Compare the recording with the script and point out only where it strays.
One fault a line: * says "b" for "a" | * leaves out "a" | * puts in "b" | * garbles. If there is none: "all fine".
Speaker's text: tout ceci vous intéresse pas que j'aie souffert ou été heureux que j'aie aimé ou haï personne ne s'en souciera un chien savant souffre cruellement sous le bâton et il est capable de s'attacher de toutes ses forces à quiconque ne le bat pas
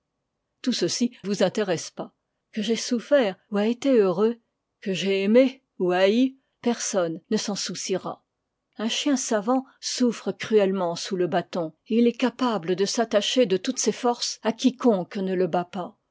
all fine